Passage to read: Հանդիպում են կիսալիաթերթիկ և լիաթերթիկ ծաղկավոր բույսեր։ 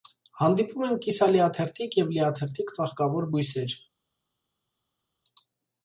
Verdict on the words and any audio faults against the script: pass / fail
pass